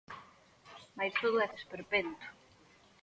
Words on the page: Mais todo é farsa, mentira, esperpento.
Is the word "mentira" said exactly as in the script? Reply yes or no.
no